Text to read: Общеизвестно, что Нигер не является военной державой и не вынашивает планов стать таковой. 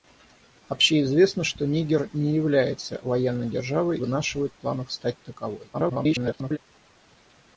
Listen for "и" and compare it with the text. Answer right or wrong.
wrong